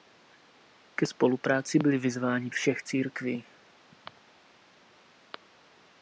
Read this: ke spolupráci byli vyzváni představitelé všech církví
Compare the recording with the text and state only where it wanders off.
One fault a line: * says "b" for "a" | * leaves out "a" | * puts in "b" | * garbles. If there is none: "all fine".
* leaves out "představitelé"